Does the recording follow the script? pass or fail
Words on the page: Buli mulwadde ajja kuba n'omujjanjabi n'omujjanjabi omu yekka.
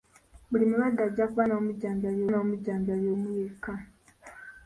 pass